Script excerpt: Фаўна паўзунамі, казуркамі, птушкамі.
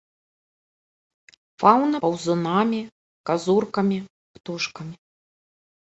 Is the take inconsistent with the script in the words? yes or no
no